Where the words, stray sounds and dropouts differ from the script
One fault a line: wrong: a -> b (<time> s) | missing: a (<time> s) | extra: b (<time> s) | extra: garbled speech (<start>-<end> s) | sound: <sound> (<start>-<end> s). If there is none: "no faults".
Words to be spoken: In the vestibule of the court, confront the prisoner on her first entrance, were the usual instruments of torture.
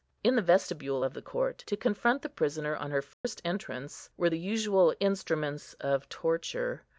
extra: to (1.7 s)
sound: dropout (3.1-3.2 s)